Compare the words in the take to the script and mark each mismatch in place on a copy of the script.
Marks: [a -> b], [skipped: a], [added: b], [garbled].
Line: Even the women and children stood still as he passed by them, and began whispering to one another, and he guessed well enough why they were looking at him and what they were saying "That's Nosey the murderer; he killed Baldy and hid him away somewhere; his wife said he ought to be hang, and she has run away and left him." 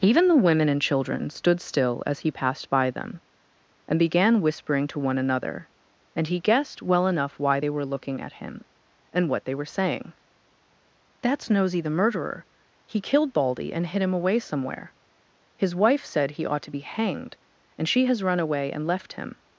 Even the women and children stood still as he passed by them, and began whispering to one another, and he guessed well enough why they were looking at him and what they were saying "That's Nosey the murderer; he killed Baldy and hid him away somewhere; his wife said he ought to be [hang, -> hanged] and she has run away and left him."